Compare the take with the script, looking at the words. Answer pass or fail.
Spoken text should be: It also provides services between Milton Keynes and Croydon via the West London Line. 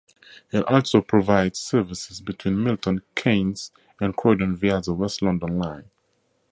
pass